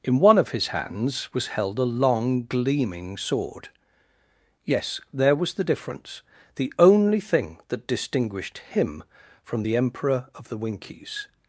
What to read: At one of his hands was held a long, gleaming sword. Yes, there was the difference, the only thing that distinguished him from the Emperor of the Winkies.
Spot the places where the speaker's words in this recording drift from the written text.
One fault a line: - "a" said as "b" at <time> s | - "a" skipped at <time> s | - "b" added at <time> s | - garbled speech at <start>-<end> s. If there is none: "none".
- "At" said as "In" at 0.0 s